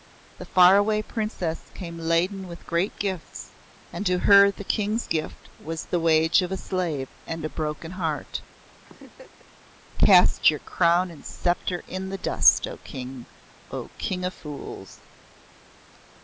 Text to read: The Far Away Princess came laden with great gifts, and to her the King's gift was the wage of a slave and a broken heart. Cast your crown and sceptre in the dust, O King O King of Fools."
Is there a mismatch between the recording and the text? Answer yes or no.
no